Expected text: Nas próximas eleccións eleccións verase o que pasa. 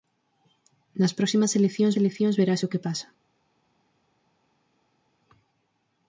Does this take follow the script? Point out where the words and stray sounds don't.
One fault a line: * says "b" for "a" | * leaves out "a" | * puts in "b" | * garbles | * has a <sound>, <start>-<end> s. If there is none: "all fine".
all fine